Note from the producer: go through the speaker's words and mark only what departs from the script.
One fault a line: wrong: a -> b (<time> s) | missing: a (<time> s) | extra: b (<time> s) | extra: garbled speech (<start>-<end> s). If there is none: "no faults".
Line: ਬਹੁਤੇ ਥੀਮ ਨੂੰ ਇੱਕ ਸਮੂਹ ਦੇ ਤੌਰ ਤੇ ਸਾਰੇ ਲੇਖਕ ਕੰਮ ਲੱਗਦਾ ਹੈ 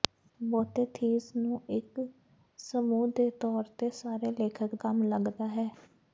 no faults